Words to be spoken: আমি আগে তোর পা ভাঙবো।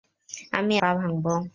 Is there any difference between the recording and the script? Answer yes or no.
yes